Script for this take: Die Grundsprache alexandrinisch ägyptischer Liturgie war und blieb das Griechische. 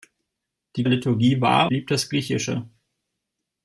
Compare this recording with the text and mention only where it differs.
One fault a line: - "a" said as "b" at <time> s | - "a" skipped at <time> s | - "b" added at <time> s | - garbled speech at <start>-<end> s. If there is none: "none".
- "Grundsprache alexandrinisch ägyptischer" skipped at 0.8 s
- "und" skipped at 1.7 s